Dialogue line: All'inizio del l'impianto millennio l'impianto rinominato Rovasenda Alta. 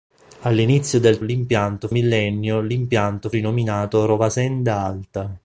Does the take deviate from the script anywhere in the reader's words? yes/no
no